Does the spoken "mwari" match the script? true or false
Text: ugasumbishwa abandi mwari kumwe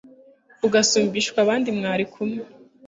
true